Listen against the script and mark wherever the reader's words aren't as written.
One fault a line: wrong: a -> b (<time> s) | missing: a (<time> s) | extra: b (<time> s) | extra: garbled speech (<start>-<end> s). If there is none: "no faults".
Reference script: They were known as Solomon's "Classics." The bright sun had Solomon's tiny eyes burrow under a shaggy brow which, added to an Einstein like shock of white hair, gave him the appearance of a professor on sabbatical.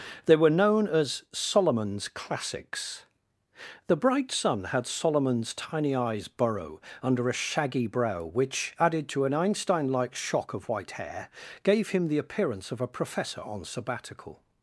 no faults